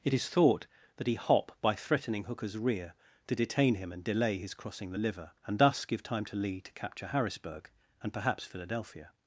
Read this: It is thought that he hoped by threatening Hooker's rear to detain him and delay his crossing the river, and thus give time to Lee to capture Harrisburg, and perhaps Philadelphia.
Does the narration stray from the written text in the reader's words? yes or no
yes